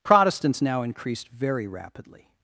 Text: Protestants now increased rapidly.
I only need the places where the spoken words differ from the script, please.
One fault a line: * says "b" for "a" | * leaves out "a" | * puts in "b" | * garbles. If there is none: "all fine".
* puts in "very"